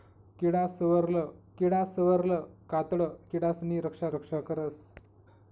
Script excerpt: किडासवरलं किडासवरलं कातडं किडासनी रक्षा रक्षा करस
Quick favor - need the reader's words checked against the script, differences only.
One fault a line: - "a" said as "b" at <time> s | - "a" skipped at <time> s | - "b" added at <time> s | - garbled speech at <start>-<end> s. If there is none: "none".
none